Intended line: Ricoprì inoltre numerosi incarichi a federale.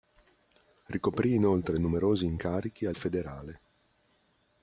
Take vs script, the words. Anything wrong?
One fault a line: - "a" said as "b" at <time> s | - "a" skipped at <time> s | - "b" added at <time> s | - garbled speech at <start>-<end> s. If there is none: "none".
none